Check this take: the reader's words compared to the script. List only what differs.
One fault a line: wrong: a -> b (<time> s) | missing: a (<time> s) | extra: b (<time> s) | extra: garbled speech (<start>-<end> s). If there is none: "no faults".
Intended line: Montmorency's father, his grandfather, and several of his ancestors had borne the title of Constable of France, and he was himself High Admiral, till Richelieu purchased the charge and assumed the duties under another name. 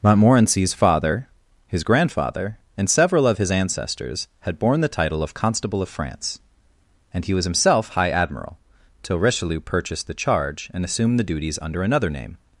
no faults